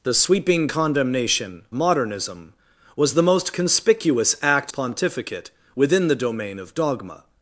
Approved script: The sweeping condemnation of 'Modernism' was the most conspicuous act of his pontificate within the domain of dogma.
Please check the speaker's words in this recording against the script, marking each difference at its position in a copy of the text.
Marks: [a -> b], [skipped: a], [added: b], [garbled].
The sweeping condemnation [skipped: of] 'Modernism' was the most conspicuous act [skipped: of his] pontificate within the domain of dogma.